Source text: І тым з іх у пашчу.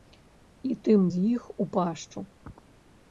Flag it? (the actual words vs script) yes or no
no